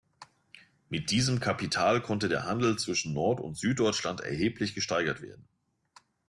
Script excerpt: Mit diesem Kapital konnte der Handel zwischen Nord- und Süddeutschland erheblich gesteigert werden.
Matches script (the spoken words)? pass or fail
pass